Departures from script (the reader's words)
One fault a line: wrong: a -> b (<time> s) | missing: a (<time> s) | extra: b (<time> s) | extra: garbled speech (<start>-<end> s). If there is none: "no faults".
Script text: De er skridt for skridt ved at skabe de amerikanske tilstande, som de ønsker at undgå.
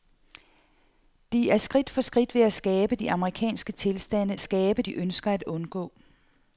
wrong: som -> skabe (4.4 s)